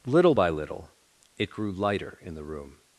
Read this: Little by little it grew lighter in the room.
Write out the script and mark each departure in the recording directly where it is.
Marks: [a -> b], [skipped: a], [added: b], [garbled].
Little by little it grew lighter in the room.